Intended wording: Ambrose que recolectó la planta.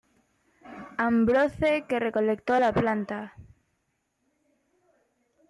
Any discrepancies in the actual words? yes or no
no